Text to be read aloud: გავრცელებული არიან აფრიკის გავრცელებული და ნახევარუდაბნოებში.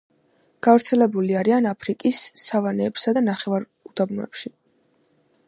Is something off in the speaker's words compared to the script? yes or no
yes